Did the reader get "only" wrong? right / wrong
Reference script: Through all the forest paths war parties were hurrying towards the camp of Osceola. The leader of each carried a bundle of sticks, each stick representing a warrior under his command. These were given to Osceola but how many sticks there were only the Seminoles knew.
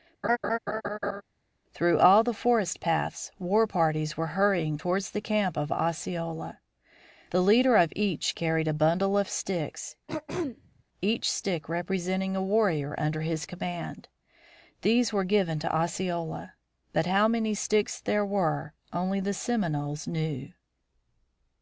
right